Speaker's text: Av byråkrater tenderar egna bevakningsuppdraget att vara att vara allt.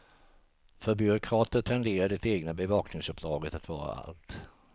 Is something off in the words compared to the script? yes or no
yes